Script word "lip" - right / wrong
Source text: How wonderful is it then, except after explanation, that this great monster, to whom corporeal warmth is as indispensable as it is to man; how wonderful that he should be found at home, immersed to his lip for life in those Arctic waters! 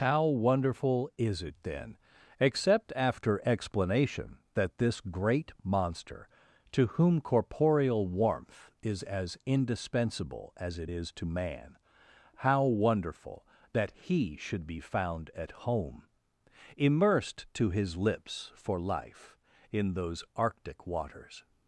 wrong